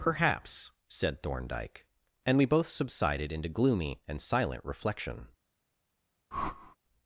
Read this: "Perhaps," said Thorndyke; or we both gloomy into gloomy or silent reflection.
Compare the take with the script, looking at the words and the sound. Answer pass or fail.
fail